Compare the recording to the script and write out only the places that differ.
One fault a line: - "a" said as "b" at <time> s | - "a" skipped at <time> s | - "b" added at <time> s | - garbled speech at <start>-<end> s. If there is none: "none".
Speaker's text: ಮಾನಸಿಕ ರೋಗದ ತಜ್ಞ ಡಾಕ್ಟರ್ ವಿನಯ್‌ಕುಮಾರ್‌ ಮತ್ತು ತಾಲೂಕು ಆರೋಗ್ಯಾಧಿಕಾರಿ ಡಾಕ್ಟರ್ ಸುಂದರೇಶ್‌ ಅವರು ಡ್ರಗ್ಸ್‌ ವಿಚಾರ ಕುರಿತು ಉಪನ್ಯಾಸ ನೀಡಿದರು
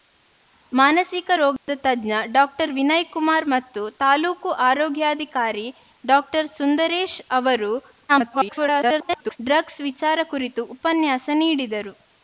- garbled speech at 8.1-9.4 s